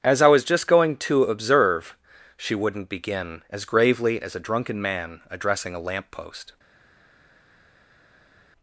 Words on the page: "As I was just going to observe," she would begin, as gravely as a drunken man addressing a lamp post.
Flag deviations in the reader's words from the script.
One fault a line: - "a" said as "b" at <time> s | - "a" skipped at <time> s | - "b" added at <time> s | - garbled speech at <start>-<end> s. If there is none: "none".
- "would" said as "wouldn't" at 2.5 s